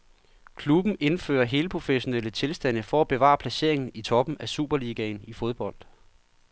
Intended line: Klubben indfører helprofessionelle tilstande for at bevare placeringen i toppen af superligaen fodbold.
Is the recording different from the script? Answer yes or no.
yes